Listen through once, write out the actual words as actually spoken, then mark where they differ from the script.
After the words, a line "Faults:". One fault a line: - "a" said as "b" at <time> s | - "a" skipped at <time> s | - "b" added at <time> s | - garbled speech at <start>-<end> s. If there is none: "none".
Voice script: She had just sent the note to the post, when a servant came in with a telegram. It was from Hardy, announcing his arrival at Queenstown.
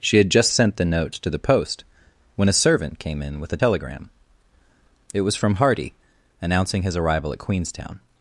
She had just sent the note to the post, when a servant came in with a telegram. It was from Hardy, announcing his arrival at Queenstown.
Faults:
none